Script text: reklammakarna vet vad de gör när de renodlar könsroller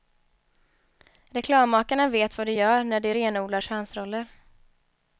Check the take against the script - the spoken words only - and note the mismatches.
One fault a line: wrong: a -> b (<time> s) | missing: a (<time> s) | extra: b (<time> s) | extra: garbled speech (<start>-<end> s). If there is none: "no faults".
no faults